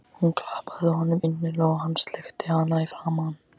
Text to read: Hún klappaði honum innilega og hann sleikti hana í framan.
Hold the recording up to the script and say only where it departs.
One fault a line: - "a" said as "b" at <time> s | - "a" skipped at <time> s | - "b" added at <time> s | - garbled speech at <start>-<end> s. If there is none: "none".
none